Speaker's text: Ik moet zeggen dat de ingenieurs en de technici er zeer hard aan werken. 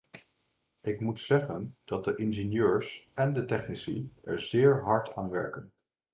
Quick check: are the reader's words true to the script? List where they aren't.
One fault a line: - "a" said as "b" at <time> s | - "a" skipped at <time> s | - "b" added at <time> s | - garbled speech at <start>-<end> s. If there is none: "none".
none